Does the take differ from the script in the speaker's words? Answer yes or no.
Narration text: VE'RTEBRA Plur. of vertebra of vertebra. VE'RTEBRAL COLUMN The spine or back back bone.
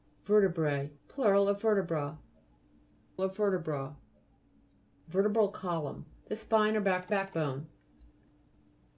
no